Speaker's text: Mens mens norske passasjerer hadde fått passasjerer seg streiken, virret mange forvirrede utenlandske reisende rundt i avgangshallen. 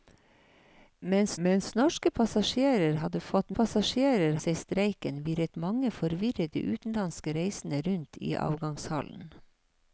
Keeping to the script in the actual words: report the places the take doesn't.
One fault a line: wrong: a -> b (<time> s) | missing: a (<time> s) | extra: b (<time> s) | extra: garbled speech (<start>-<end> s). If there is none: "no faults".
no faults